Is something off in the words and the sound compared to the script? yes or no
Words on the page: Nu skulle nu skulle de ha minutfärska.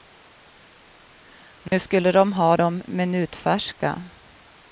yes